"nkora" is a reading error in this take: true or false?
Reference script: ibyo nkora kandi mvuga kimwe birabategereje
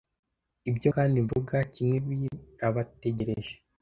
true